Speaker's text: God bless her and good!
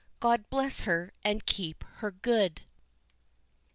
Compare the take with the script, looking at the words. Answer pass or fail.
fail